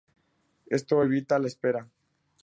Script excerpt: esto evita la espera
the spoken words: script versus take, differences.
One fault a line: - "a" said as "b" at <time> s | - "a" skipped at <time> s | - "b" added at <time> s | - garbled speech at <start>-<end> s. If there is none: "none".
none